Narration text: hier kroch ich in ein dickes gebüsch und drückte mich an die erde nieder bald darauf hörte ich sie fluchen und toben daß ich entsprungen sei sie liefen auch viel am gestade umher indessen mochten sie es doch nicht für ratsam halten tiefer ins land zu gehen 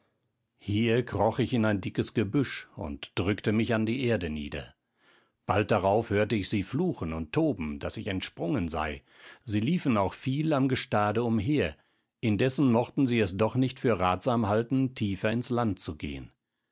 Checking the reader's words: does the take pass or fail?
pass